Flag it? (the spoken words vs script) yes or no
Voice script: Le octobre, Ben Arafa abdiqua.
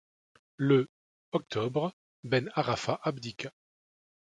no